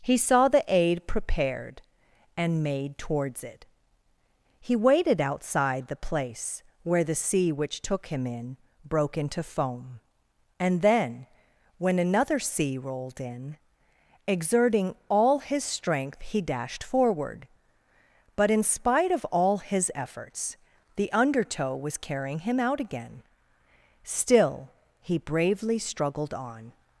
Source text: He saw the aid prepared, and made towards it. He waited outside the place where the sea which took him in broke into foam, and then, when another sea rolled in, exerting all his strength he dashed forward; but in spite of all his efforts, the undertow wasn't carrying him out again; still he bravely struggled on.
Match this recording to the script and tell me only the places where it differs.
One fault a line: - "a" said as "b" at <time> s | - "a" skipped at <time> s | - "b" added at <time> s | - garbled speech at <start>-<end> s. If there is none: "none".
- "wasn't" said as "was" at 21.8 s